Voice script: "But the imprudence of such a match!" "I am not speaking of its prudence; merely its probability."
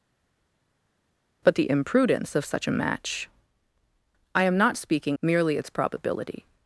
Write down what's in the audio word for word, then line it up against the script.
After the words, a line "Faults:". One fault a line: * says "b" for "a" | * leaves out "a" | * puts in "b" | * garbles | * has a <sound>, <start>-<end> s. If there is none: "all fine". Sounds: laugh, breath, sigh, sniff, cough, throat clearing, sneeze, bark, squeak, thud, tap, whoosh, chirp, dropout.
"But the imprudence of such a match!" "I am not speaking; merely its probability."
Faults:
* leaves out "of its prudence"